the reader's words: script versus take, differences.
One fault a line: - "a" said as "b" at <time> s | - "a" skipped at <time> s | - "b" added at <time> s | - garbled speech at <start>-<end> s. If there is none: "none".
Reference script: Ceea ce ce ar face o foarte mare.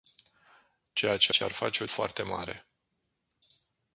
none